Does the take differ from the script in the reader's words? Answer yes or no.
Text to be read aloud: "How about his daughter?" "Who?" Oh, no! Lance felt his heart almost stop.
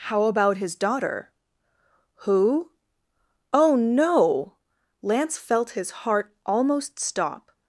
no